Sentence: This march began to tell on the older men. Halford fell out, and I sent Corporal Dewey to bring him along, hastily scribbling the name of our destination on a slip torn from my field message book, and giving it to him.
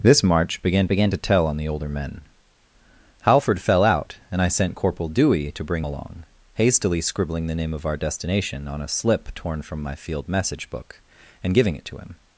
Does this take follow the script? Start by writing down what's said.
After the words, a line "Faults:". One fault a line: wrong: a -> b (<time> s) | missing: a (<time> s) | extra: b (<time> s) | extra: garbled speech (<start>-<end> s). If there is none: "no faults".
This march began began to tell on the older men. Halford fell out, and I sent Corporal Dewey to bring along, hastily scribbling the name of our destination on a slip torn from my field message book, and giving it to him.
Faults:
extra: began (0.9 s)
missing: him (5.8 s)